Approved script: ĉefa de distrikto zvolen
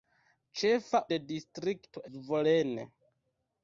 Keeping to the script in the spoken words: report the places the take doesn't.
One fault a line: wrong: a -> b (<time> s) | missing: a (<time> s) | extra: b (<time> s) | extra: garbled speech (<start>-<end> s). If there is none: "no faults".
no faults